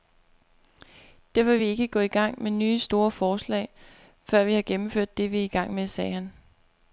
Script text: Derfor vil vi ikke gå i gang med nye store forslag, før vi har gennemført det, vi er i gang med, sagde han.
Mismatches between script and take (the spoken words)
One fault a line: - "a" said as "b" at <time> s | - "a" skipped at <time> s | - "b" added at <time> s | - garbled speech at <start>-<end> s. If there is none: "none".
none